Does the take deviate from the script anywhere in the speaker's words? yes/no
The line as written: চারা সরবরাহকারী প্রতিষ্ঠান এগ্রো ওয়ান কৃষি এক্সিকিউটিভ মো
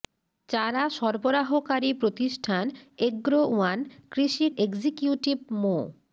no